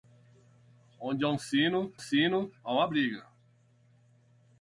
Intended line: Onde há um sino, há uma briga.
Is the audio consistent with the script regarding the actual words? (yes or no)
no